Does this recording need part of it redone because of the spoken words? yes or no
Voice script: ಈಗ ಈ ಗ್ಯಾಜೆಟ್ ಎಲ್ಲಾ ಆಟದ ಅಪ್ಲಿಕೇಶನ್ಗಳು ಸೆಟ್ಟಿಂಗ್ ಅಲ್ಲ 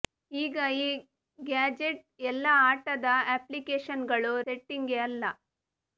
no